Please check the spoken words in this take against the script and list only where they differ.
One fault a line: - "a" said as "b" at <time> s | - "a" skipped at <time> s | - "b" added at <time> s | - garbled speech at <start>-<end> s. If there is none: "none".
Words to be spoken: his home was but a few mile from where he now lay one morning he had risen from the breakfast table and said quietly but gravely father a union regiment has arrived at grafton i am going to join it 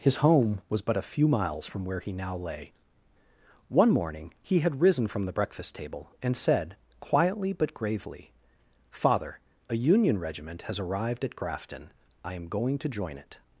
- "mile" said as "miles" at 1.3 s